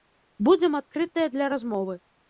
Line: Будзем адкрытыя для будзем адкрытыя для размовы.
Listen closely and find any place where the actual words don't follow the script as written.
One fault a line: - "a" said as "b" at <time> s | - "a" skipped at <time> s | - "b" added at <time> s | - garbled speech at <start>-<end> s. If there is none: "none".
- "будзем адкрытыя для" skipped at 1.5 s